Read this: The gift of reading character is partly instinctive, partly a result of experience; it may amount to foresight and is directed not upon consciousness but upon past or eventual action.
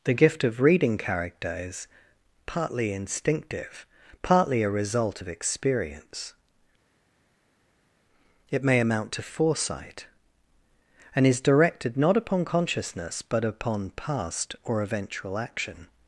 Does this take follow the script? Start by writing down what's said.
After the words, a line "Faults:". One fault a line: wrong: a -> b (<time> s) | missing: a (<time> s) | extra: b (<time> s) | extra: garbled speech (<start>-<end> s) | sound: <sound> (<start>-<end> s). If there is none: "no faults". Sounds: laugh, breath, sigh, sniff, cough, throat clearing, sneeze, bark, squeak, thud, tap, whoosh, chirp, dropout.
The gift of reading character is partly instinctive, partly a result of experience; it may amount to foresight and is directed not upon consciousness but upon past or eventual action.
Faults:
no faults